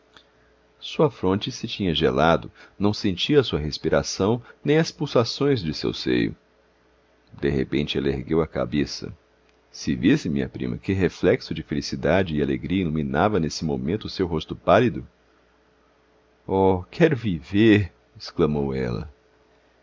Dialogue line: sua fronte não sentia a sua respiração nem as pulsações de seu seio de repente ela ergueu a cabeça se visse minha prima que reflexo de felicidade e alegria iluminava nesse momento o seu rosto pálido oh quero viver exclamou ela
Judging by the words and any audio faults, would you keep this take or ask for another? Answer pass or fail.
fail